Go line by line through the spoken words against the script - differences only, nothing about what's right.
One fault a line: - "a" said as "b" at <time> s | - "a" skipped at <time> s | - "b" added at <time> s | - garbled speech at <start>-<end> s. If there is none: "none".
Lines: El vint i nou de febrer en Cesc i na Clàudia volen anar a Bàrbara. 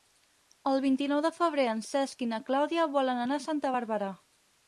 - "Santa" added at 3.5 s